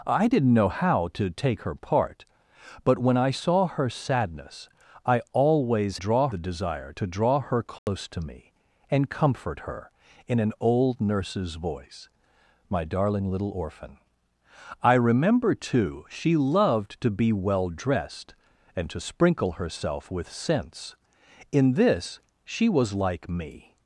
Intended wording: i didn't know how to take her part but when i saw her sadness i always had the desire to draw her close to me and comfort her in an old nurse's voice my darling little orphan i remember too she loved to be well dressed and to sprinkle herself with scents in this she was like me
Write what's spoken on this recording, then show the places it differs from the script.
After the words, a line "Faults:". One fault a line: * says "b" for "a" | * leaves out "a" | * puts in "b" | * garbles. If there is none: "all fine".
i didn't know how to take her part but when i saw her sadness i always draw the desire to draw her close to me and comfort her in an old nurse's voice my darling little orphan i remember too she loved to be well dressed and to sprinkle herself with scents in this she was like me
Faults:
* says "draw" for "had"